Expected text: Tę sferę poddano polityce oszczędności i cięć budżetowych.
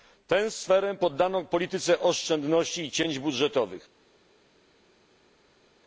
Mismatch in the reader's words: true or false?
false